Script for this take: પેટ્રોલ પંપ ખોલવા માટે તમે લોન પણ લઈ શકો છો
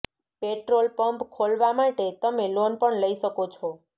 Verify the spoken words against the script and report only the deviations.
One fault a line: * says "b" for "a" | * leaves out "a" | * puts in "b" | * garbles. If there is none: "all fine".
all fine